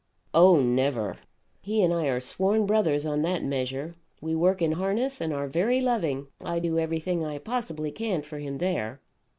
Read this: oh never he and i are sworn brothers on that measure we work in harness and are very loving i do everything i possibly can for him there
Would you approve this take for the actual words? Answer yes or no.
yes